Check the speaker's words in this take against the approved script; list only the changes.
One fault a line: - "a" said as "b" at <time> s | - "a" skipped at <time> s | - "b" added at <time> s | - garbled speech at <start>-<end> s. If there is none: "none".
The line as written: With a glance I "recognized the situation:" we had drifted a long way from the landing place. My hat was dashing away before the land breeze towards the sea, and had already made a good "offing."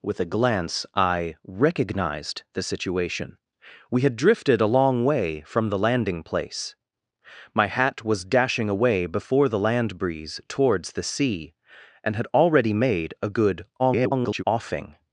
- garbled speech at 13.8-14.4 s